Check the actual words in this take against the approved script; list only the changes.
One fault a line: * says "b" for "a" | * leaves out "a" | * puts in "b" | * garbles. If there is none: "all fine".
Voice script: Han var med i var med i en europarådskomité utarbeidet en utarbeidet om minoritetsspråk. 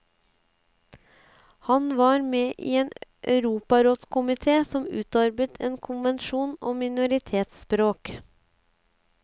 * leaves out "var med i"
* puts in "som"
* says "konvensjon" for "utarbeidet"